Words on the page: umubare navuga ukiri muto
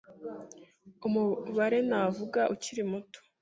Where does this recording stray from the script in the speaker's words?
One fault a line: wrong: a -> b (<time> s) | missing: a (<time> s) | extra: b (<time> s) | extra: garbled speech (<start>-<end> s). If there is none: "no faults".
no faults